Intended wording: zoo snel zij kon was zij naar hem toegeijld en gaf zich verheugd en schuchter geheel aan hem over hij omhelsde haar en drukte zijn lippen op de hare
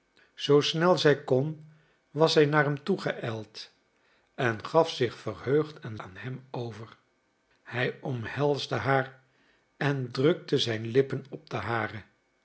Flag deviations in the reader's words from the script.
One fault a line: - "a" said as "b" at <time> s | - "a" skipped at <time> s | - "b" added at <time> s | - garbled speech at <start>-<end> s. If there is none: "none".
- "schuchter geheel" skipped at 6.0 s